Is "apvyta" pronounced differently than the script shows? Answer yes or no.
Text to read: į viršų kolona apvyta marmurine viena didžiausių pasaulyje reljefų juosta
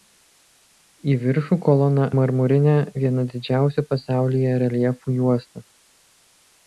yes